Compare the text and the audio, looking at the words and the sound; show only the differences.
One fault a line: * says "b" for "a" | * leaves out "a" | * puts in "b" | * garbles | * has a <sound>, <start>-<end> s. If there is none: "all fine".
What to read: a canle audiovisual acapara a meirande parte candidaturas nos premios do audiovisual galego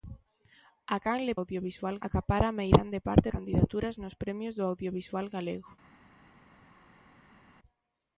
all fine